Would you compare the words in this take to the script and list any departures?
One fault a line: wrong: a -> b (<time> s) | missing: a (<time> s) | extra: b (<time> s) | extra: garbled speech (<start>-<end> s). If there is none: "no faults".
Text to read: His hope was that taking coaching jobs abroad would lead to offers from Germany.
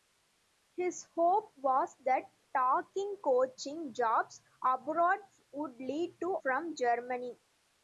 missing: offers (6.4 s)